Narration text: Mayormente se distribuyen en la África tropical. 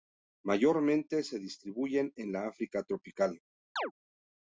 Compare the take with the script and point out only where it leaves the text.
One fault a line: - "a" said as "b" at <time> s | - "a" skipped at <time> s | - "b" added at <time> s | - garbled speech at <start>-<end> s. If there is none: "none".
none